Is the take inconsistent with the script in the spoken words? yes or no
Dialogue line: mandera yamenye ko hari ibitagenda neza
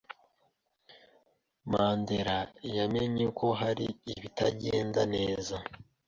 no